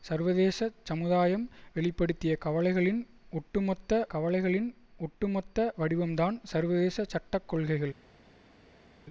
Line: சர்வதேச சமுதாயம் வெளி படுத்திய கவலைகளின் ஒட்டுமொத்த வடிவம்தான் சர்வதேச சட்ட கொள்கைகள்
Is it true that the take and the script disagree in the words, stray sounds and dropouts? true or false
true